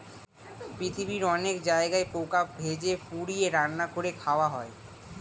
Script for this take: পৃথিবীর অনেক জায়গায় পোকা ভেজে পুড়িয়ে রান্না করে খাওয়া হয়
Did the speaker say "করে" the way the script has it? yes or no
yes